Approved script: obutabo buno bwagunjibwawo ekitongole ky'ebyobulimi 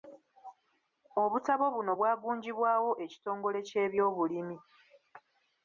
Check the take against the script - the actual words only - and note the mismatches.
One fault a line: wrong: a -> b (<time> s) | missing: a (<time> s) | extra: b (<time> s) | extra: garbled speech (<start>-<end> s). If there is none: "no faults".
no faults